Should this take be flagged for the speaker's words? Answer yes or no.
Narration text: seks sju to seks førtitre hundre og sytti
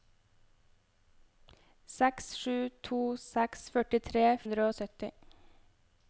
no